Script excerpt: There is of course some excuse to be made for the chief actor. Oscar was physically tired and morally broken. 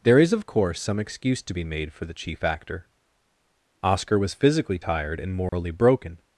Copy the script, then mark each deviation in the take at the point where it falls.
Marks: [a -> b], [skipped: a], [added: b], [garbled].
There is of course some excuse to be made for the chief actor. Oscar was physically tired and morally broken.